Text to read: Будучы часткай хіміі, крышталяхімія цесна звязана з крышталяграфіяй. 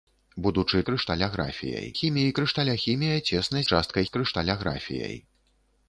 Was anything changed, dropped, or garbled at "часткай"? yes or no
yes